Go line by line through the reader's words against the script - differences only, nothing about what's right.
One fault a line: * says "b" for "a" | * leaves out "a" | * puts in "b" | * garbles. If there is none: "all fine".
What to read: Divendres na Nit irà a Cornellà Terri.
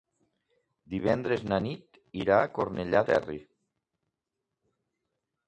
all fine